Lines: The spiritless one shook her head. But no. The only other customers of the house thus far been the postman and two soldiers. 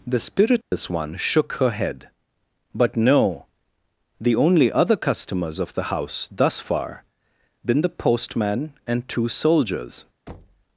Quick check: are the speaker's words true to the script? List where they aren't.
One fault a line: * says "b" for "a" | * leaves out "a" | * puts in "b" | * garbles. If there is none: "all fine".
all fine